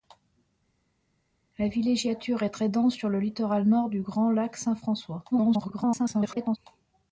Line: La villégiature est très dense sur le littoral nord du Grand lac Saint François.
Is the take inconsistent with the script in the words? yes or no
yes